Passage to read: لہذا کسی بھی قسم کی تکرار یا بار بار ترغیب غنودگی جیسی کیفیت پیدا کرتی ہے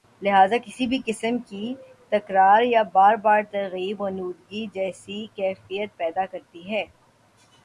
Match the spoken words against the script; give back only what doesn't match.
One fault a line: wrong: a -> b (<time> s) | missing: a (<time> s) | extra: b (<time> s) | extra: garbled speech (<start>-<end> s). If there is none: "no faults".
no faults